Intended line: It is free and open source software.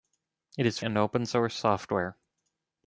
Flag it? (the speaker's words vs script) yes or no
yes